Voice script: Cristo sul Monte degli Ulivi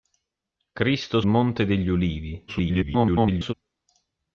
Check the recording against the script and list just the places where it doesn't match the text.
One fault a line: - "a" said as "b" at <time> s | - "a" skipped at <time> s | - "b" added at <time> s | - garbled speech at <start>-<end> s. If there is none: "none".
- "sul" skipped at 1.2 s
- garbled speech at 2.5-3.5 s